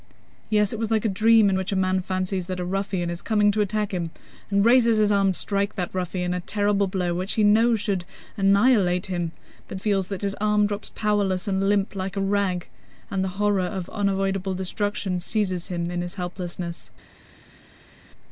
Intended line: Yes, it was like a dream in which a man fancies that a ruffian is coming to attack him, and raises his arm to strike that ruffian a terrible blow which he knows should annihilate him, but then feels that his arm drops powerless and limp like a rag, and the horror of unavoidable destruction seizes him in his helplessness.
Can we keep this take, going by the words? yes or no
no